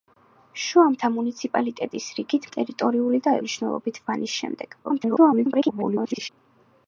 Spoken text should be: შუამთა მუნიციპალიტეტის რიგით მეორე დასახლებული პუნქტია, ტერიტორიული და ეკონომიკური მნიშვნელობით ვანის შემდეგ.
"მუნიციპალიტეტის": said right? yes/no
yes